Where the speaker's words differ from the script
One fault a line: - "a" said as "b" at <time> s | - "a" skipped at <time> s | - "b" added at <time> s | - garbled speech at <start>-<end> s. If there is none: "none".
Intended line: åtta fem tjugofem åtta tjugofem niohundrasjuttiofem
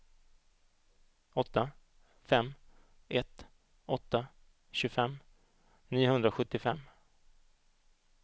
- "tjugofem" said as "ett" at 3.1 s